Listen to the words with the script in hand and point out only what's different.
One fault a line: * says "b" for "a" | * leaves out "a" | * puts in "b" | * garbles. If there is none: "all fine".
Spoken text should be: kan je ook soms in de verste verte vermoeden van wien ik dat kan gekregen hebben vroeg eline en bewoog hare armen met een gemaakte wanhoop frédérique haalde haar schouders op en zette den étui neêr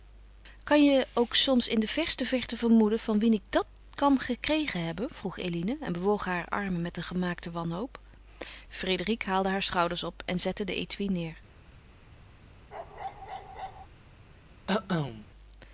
all fine